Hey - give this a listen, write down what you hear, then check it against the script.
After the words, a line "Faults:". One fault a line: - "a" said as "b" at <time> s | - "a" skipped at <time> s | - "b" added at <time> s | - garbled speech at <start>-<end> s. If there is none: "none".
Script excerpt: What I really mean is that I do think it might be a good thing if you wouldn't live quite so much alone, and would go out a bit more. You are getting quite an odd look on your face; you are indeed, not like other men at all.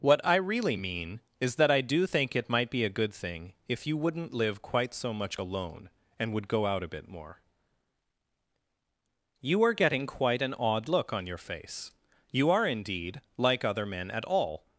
What I really mean is that I do think it might be a good thing if you wouldn't live quite so much alone, and would go out a bit more. You are getting quite an odd look on your face; you are indeed, like other men at all.
Faults:
- "not" skipped at 13.2 s